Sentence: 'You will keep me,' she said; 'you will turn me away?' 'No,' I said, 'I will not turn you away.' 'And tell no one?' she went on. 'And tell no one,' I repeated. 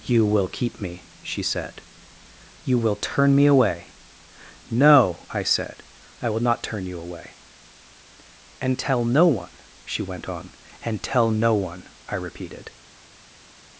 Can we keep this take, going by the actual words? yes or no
yes